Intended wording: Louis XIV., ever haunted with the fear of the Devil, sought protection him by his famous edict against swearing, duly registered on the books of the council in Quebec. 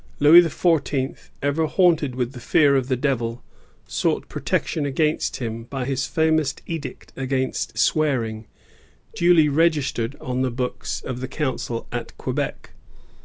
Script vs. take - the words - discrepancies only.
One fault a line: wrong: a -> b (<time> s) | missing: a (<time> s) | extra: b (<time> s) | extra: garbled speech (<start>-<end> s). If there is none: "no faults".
extra: against (4.8 s)
wrong: in -> at (11.9 s)